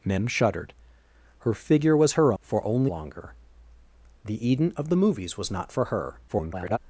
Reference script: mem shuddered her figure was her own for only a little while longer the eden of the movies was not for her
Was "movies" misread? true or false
false